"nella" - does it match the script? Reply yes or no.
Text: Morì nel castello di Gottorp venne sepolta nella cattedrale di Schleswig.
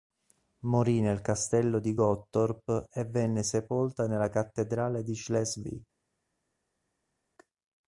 yes